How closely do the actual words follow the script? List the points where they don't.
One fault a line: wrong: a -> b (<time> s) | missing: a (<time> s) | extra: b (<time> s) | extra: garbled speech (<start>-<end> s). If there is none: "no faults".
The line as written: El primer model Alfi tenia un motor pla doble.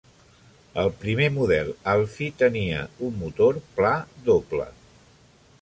no faults